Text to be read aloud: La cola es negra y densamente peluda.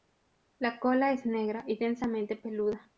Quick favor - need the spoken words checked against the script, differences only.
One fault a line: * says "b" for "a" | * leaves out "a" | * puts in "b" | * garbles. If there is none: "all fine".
all fine